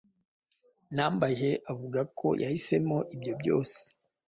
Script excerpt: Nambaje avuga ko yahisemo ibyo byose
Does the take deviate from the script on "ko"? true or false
false